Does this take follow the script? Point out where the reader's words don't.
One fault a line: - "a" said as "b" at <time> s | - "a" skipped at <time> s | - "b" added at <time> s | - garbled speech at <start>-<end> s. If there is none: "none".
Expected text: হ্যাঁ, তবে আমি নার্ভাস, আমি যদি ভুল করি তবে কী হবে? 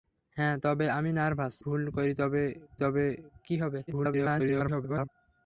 - "আমি যদি" skipped at 1.5 s
- "তবে" added at 2.8 s
- garbled speech at 3.9-5.1 s